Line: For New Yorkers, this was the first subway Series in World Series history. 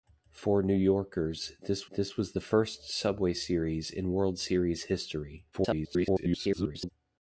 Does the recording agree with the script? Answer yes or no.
no